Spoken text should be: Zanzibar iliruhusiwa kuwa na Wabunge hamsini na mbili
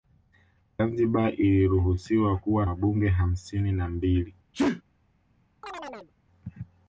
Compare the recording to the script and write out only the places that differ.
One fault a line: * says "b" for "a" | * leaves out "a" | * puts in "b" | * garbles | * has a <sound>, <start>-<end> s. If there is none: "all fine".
* leaves out "na"
* has a sneeze, 4.5-4.8 s
* has a chirp, 5.6-6.1 s